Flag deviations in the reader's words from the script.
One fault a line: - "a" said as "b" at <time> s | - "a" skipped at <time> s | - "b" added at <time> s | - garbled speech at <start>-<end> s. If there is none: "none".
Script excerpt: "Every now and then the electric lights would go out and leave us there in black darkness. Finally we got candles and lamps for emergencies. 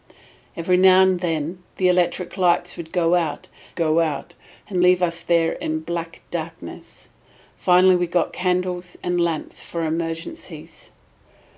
- "go out" added at 3.7 s